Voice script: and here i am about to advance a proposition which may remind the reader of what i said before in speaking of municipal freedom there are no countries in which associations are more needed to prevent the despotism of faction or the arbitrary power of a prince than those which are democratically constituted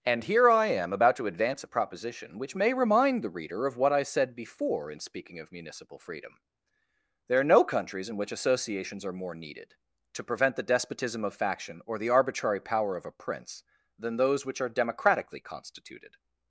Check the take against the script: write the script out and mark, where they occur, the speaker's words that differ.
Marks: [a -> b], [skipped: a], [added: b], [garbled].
and here i am about to advance a proposition which may remind the reader of what i said before in speaking of municipal freedom there are no countries in which associations are more needed to prevent the despotism of faction or the arbitrary power of a prince than those which are democratically constituted